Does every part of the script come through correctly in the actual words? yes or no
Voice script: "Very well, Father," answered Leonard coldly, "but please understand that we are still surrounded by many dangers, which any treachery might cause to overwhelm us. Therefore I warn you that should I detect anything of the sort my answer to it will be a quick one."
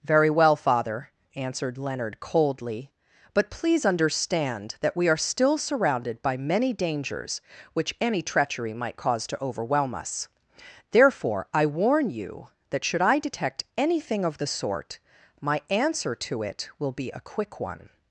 yes